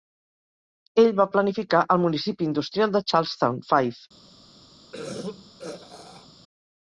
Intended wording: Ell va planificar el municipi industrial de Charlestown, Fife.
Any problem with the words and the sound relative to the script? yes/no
yes